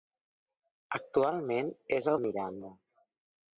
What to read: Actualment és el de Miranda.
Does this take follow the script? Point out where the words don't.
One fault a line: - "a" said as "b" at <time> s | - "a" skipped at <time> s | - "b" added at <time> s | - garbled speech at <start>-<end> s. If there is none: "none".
none